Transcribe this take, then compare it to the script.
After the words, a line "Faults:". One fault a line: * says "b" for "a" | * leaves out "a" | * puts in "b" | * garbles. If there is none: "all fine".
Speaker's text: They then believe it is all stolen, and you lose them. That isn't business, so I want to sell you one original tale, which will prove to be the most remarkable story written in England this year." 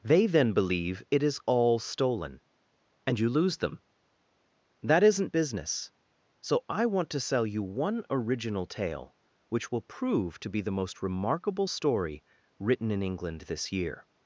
They then believe it is all stolen, and you lose them. That isn't business, so I want to sell you one original tale, which will prove to be the most remarkable story written in England this year."
Faults:
all fine